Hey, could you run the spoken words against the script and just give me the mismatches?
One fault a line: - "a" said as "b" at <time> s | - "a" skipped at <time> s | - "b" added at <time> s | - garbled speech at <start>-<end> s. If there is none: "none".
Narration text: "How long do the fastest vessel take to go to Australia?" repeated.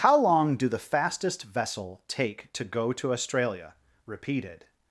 none